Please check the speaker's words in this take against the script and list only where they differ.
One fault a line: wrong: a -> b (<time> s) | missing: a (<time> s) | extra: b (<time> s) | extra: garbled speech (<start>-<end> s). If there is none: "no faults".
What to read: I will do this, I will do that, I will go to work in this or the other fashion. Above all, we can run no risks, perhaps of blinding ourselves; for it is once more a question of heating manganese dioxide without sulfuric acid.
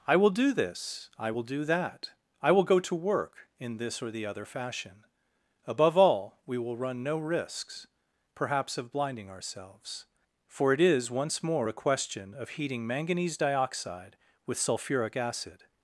wrong: can -> will (6.6 s)
wrong: without -> with (14.4 s)